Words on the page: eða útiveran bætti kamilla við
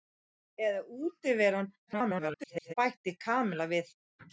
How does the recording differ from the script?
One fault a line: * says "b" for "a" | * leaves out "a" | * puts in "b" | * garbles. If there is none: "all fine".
* garbles